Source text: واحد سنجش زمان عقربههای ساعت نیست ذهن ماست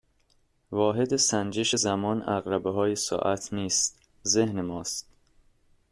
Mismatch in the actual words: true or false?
false